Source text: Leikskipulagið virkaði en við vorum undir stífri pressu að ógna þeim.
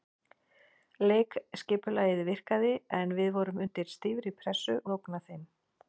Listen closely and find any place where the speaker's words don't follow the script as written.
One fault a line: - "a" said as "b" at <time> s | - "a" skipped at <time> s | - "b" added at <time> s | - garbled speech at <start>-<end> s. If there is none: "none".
none